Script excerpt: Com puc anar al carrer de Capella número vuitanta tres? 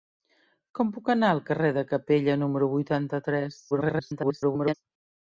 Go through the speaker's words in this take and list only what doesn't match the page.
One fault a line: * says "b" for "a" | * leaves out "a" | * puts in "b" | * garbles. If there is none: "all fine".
* garbles